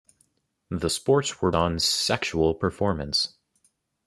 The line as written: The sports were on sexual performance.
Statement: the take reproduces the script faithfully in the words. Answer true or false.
true